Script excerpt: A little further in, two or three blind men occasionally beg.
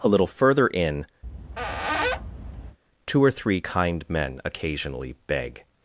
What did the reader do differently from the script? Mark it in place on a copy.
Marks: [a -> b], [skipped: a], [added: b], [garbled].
A little further in, two or three [blind -> kind] men occasionally beg.